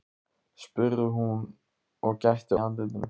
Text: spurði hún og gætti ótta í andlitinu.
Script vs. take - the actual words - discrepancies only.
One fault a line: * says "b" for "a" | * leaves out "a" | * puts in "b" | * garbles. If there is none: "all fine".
* leaves out "ótta"